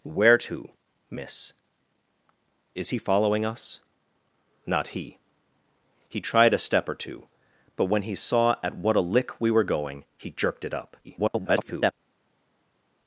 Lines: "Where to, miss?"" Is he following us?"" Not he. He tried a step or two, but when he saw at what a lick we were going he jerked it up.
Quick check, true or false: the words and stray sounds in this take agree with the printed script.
false